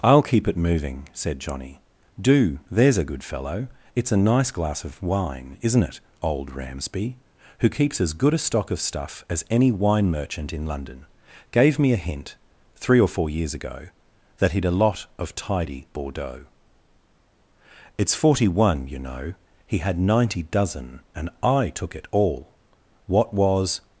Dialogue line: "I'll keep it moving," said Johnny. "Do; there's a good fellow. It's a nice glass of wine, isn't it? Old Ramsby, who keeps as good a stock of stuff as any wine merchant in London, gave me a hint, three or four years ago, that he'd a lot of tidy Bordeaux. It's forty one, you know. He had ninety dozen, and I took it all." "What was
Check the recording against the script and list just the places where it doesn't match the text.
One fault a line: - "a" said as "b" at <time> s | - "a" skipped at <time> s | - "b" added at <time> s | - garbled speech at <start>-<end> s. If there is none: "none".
none